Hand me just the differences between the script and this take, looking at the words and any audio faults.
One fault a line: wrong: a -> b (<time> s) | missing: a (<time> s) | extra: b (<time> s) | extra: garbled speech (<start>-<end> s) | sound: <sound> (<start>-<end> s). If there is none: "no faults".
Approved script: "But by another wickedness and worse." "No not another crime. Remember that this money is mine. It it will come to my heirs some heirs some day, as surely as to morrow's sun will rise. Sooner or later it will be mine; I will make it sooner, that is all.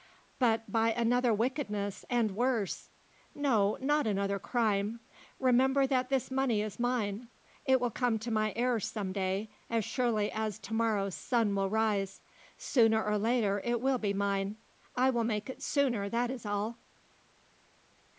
missing: it (7.8 s)
missing: heirs some (9.1 s)